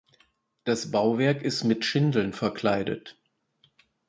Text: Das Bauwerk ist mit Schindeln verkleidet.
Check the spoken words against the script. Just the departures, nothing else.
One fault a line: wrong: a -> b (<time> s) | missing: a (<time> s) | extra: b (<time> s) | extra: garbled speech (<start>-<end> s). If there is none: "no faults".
no faults